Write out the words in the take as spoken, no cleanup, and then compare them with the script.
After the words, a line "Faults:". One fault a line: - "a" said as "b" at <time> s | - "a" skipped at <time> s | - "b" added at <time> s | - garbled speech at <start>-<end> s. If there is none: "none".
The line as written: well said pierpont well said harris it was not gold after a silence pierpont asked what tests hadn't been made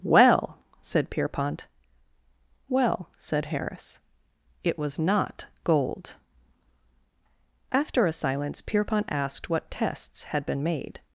well said pierpont well said harris it was not gold after a silence pierpont asked what tests had been made
Faults:
- "hadn't" said as "had" at 10.2 s